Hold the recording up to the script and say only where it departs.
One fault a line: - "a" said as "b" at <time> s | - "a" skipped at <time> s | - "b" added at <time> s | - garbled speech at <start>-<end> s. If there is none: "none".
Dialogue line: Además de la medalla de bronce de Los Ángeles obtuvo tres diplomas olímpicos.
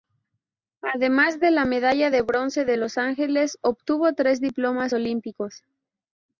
none